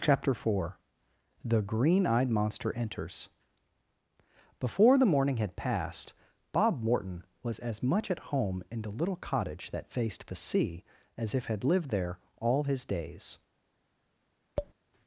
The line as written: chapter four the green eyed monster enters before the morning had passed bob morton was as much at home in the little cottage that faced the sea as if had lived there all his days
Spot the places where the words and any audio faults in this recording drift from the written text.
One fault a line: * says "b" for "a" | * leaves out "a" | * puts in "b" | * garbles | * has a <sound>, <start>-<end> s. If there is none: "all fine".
* has a tap, 14.6-14.7 s